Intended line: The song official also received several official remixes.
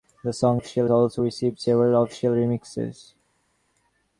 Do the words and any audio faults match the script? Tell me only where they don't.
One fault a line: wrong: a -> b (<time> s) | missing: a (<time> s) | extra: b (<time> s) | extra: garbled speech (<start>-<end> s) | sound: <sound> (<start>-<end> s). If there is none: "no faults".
no faults